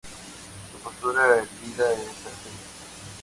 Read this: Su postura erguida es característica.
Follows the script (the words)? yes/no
yes